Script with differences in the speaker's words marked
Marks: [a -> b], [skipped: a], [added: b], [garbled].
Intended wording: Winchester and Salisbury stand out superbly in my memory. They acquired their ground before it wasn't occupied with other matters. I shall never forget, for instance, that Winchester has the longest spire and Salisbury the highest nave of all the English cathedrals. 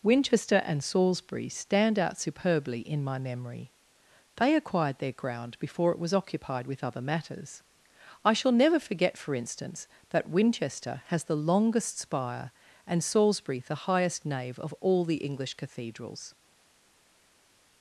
Winchester and Salisbury stand out superbly in my memory. They acquired their ground before it [wasn't -> was] occupied with other matters. I shall never forget, for instance, that Winchester has the longest spire and Salisbury the highest nave of all the English cathedrals.